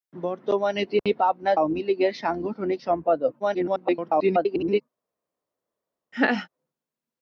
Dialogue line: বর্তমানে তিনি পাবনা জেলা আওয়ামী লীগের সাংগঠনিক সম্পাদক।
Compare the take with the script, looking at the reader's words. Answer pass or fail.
fail